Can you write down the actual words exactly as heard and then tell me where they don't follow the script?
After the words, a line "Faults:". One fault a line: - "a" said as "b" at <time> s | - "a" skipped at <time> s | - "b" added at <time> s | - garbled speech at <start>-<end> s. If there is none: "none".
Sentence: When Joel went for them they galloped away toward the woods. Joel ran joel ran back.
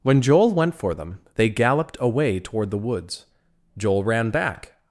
When Joel went for them they galloped away toward the woods. Joel ran back.
Faults:
- "joel ran" skipped at 4.3 s